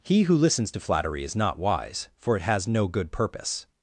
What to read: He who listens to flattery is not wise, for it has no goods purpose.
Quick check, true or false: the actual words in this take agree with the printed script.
false